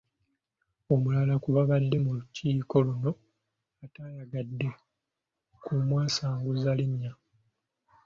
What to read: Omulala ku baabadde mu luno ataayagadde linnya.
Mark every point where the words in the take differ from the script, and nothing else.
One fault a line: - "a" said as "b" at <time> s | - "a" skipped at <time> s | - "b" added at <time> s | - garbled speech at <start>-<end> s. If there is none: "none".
- "lukiiko" added at 2.2 s
- "kumwasanguza" added at 5.6 s